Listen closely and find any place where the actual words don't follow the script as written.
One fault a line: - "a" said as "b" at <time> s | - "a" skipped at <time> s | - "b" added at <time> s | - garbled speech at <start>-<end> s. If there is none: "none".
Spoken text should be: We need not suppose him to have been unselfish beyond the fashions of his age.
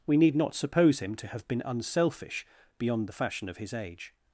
- "fashions" said as "fashion" at 3.1 s